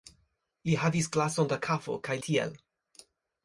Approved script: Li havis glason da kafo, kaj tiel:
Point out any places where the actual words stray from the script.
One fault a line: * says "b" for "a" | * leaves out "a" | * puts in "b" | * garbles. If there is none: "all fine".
all fine